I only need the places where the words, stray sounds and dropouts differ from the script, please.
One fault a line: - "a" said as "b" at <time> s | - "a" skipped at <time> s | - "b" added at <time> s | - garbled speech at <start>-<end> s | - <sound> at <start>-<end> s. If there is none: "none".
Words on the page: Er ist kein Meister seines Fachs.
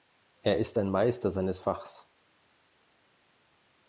- "kein" said as "ein" at 0.8 s